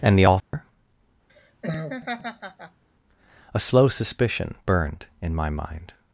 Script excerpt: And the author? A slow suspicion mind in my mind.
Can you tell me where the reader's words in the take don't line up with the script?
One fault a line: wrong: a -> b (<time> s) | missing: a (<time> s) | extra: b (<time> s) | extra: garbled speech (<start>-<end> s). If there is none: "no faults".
wrong: mind -> burned (4.7 s)